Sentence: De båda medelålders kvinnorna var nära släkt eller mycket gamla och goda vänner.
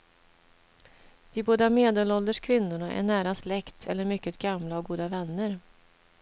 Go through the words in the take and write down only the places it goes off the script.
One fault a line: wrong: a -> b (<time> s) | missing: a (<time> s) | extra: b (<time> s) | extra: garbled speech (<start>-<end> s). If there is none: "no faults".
wrong: var -> är (2.9 s)